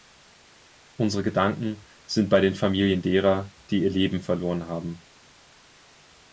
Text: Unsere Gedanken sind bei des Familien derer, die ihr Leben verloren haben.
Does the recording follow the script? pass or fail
fail